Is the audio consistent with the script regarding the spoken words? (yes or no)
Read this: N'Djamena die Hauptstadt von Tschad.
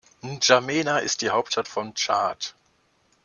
no